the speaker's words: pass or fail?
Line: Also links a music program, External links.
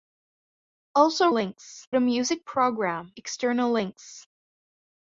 pass